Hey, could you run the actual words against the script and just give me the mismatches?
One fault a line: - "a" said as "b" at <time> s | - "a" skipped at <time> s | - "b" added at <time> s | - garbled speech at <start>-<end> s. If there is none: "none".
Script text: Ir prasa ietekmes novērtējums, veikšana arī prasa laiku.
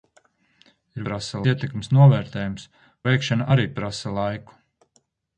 none